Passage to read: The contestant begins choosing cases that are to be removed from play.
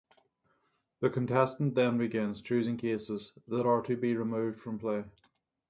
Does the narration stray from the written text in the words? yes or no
yes